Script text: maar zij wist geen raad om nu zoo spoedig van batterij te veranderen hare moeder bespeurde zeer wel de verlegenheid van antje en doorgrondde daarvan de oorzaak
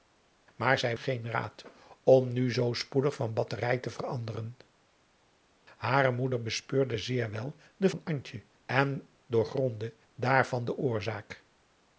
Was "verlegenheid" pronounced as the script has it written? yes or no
no